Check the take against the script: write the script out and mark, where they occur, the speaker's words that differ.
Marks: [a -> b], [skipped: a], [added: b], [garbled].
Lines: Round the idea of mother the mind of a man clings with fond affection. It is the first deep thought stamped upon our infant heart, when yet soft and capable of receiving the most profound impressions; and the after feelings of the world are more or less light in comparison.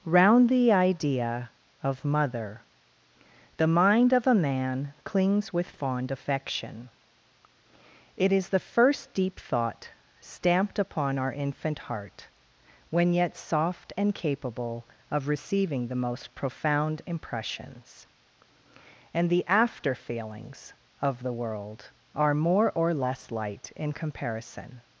Round the idea of mother the mind of a man clings with fond affection. It is the first deep thought stamped upon our infant heart, when yet soft and capable of receiving the most profound impressions; and the after feelings of the world are more or less light in comparison.